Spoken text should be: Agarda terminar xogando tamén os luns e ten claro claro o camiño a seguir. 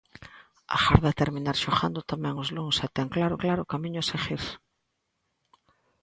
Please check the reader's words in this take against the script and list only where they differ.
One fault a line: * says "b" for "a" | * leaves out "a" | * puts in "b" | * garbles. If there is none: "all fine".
all fine